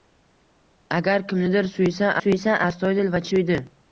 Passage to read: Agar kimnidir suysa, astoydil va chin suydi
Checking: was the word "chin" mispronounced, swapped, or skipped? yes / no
yes